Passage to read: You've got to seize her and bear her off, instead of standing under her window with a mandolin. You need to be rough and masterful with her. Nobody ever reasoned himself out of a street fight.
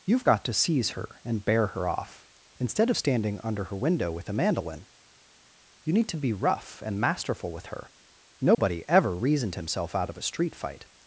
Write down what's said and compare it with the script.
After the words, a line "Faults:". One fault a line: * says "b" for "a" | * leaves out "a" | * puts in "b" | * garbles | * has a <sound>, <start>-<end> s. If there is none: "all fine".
You've got to seize her and bear her off, instead of standing under her window with a mandolin. You need to be rough and masterful with her. Nobody ever reasoned himself out of a street fight.
Faults:
* has a dropout, 8.5-8.6 s